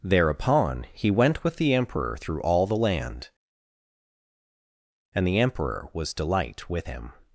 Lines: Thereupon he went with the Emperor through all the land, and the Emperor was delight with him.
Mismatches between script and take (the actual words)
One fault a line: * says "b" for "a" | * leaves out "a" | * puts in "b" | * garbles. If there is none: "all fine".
all fine